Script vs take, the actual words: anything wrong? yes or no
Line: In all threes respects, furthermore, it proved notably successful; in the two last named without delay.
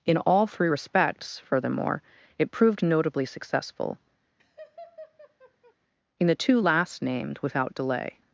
yes